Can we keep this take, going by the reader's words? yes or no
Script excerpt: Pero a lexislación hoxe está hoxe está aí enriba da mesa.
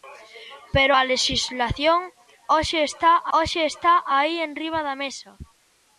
yes